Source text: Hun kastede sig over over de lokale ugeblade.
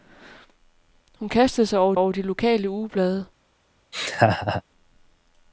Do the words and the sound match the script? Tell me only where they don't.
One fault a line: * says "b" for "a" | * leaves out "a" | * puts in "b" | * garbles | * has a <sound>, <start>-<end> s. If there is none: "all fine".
* has a laugh, 3.9-4.6 s